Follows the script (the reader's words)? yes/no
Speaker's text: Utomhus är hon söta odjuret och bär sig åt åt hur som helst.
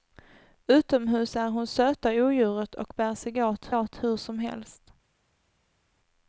yes